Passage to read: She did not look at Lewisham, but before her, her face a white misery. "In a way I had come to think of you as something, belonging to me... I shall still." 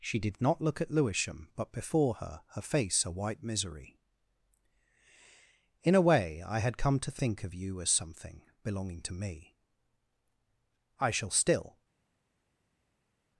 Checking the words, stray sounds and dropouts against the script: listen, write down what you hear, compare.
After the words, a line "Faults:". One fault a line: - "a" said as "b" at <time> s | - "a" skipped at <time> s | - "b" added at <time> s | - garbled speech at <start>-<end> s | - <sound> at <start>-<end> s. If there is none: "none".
She did not look at Lewisham, but before her, her face a white misery. "In a way I had come to think of you as something, belonging to me... I shall still."
Faults:
none